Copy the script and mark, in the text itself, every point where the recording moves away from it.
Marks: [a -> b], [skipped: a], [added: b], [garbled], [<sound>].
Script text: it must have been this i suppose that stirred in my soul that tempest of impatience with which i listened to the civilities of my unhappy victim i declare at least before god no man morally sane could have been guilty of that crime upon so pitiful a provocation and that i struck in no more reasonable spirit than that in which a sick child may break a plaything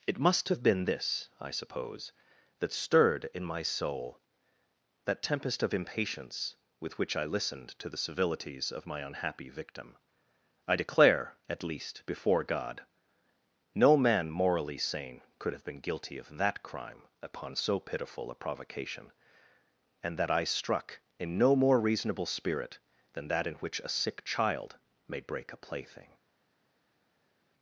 it must have been this i suppose that stirred in my soul that tempest of impatience with which i listened to the civilities of my unhappy victim i declare at least before god no man morally sane could have been guilty of that crime upon so pitiful a provocation and that i struck in no more reasonable spirit than that in which a sick child may break a plaything